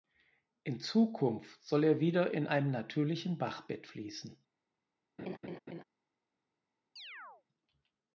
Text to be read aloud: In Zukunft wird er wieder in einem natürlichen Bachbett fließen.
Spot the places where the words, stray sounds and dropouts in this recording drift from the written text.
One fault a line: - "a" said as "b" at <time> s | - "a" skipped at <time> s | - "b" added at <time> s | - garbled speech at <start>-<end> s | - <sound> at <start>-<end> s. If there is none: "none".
- "wird" said as "soll" at 1.6 s
- laugh at 5.2-5.8 s
- chirp at 7.0-7.4 s